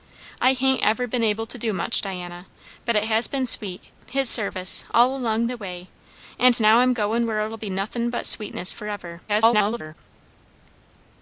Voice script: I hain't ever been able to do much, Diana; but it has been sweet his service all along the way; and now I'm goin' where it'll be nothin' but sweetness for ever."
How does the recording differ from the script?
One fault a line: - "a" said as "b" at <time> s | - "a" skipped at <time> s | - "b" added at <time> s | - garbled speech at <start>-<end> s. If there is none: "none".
- garbled speech at 9.3-10.0 s